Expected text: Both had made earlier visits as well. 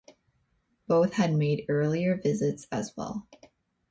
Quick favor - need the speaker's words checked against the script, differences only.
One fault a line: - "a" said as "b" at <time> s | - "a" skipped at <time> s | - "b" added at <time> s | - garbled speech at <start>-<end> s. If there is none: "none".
none